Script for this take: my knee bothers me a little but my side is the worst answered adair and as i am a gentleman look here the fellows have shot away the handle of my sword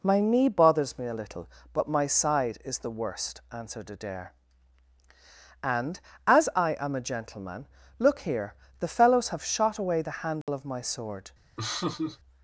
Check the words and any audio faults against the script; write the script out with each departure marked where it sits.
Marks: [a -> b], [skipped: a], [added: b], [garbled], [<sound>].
my knee bothers me a little but my side is the worst answered adair and as i am a gentleman look here the fellows have shot away the handle [dropout] of my sword [laugh]